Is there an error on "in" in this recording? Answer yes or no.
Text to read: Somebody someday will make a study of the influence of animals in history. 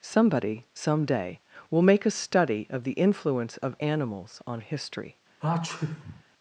yes